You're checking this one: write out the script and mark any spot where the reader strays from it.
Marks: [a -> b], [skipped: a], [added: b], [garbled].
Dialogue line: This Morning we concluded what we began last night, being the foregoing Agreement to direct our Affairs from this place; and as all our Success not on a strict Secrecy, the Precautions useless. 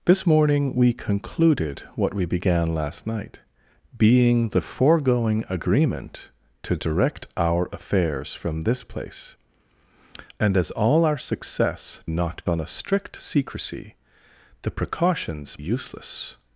This Morning we concluded what we began last night, being the foregoing Agreement to direct our Affairs from this place; and as all our Success not on a strict Secrecy, the Precautions useless.